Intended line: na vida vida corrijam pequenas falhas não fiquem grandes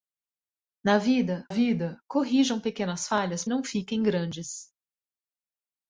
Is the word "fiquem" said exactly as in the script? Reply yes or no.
yes